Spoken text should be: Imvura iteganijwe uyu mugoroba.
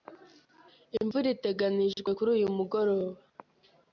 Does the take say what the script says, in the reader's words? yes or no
no